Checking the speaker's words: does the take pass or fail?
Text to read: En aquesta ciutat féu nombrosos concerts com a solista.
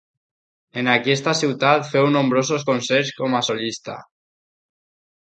pass